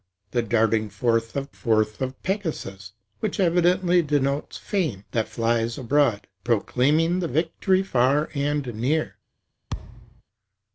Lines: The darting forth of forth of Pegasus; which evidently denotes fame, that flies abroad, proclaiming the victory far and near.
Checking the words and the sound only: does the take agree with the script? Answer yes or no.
no